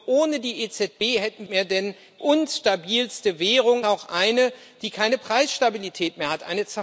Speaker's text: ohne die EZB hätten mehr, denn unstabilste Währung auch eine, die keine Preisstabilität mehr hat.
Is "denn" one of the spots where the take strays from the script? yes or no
no